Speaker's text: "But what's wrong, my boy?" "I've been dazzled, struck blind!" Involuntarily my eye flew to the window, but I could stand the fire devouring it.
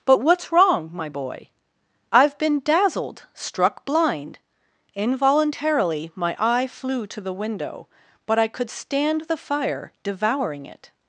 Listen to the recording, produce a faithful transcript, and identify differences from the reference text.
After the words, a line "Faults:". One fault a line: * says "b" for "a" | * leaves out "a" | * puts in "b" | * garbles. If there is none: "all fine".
"But what's wrong, my boy?" "I've been dazzled, struck blind!" Involuntarily my eye flew to the window, but I could stand the fire devouring it.
Faults:
all fine